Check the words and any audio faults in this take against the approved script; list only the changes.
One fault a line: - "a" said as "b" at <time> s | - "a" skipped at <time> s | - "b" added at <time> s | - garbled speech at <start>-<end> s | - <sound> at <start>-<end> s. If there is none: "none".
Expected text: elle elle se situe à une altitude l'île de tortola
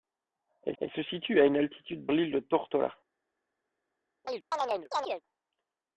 - chirp at 4.2-5.2 s